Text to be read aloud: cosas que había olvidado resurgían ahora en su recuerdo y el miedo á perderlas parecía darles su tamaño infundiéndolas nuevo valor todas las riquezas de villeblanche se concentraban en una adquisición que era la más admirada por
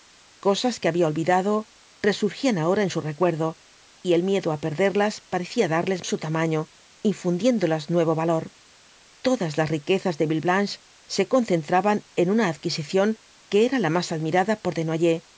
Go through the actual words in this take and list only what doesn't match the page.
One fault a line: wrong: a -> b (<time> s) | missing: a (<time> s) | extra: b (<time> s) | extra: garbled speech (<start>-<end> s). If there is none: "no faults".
no faults